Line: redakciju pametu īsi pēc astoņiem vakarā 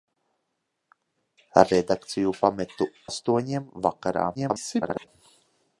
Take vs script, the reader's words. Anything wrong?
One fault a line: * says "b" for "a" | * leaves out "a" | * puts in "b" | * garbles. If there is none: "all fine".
* leaves out "īsi pēc"
* garbles